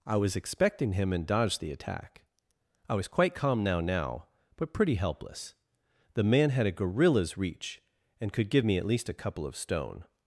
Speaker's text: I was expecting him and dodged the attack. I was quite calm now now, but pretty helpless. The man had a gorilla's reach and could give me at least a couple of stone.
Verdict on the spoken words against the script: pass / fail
pass